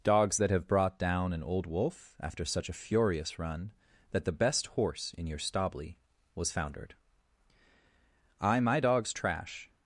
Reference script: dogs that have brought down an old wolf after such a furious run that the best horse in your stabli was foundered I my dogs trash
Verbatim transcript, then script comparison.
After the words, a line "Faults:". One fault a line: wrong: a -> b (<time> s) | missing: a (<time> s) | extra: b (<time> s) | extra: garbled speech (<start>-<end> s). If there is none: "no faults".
dogs that have brought down an old wolf after such a furious run that the best horse in your stabli was foundered I my dogs trash
Faults:
no faults